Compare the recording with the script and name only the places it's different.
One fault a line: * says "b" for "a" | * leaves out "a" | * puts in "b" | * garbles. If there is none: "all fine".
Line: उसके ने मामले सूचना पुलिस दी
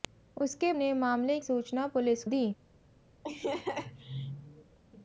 all fine